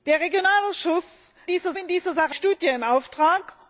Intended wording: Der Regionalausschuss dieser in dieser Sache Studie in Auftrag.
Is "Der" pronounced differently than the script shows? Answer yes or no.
no